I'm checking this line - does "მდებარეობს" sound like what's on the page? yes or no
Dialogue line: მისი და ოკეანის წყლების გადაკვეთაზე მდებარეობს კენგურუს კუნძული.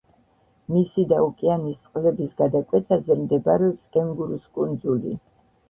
yes